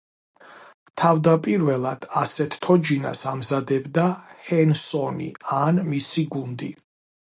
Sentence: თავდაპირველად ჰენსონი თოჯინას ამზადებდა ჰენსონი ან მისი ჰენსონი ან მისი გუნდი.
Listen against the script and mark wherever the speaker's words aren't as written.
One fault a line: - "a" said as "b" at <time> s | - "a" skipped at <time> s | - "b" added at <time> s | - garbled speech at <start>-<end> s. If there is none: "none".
- "ჰენსონი" said as "ასეთ" at 2.2 s
- "ჰენსონი ან მისი" skipped at 6.2 s